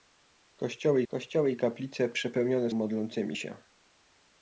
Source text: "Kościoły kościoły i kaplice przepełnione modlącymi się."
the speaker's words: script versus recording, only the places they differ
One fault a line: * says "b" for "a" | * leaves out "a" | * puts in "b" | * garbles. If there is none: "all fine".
all fine